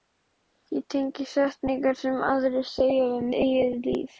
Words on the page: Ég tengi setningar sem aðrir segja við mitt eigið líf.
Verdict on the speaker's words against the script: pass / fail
fail